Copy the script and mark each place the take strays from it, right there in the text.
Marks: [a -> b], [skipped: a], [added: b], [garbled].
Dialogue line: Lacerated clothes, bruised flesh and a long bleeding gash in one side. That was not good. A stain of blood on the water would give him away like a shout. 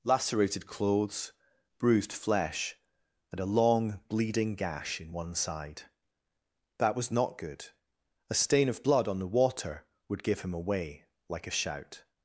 Lacerated clothes, bruised flesh and a long bleeding gash in one side. That was not good. A stain of blood on the water would give him away like a shout.